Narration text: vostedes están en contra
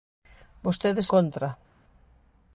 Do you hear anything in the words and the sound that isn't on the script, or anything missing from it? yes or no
yes